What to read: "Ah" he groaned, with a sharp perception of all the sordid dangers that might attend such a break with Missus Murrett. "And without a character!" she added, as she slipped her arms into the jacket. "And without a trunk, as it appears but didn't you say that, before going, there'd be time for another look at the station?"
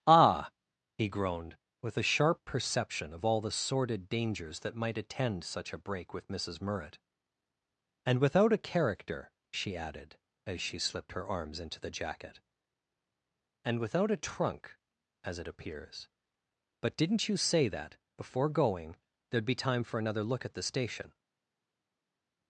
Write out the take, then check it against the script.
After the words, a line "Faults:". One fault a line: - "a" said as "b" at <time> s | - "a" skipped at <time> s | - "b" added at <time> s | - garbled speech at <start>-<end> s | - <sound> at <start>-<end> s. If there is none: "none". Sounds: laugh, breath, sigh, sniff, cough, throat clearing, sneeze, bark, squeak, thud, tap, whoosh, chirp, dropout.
"Ah" he groaned, with a sharp perception of all the sordid dangers that might attend such a break with Missus Murrett. "And without a character!" she added, as she slipped her arms into the jacket. "And without a trunk, as it appears but didn't you say that, before going, there'd be time for another look at the station?"
Faults:
none